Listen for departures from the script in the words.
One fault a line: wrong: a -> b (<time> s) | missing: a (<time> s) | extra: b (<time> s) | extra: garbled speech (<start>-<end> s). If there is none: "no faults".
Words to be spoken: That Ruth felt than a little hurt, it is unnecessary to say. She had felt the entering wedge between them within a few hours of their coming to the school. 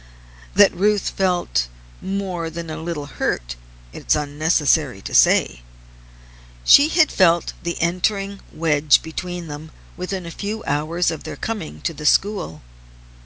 extra: more (2.0 s)